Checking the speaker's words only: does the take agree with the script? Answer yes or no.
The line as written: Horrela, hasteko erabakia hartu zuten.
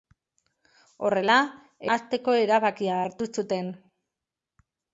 yes